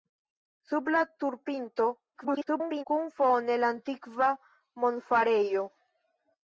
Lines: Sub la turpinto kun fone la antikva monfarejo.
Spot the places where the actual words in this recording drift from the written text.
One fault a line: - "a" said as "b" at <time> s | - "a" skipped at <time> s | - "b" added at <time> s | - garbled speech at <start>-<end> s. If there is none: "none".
- garbled speech at 2.1-2.8 s